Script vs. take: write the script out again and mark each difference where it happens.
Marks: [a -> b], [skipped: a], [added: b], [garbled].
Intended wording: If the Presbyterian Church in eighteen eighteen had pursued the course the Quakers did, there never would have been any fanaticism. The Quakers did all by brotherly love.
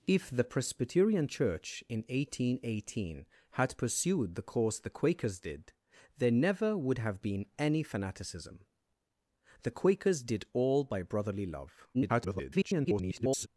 If the Presbyterian Church in eighteen eighteen had pursued the course the Quakers did, there never would have been any fanaticism. The Quakers did all by brotherly love. [garbled]